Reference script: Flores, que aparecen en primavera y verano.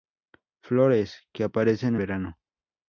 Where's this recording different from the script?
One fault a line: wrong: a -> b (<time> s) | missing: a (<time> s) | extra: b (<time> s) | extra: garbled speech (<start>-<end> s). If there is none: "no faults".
missing: en primavera y (1.9 s)